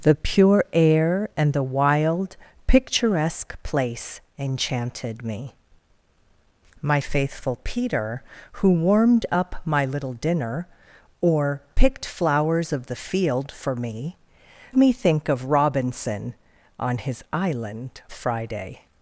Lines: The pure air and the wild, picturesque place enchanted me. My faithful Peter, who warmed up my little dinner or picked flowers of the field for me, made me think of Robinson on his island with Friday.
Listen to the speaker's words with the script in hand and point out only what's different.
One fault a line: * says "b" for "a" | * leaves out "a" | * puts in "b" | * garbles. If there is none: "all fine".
* leaves out "made"
* leaves out "with"